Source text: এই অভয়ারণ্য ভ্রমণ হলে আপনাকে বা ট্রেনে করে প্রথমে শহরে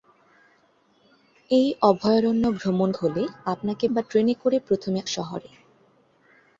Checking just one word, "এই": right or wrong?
right